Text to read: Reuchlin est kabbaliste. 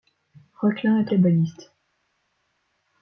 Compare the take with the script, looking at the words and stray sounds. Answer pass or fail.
pass